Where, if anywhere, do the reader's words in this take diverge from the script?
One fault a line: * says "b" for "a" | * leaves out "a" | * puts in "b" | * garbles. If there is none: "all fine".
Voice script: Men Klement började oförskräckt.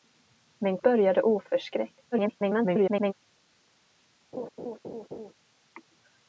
* leaves out "Klement"
* garbles